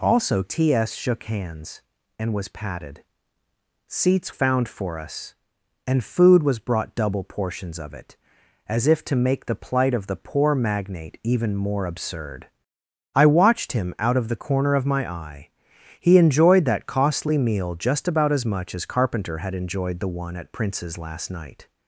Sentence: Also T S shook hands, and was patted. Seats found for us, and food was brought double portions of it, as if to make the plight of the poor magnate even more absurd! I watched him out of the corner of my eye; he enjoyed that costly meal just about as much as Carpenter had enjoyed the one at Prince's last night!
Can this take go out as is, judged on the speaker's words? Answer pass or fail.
pass